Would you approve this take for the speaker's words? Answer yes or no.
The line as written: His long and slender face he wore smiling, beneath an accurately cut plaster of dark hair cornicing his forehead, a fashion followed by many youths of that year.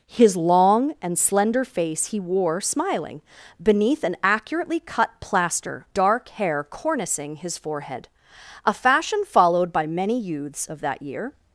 no